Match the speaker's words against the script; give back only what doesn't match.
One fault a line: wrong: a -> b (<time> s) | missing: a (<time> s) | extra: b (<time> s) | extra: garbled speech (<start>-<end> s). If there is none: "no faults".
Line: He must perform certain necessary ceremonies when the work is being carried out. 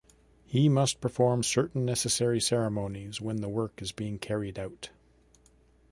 no faults